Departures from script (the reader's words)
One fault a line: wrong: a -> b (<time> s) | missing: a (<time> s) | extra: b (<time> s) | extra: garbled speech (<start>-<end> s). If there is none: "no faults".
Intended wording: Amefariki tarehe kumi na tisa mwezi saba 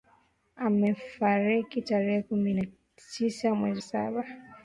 no faults